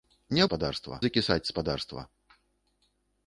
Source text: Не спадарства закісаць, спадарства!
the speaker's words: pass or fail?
pass